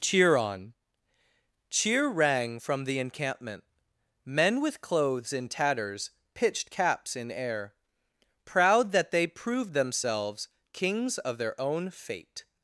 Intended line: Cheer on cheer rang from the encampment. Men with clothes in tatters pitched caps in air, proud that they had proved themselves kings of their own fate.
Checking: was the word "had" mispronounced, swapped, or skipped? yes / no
yes